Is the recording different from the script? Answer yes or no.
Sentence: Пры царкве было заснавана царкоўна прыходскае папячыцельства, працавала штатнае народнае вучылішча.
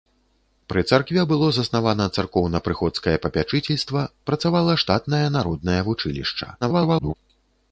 yes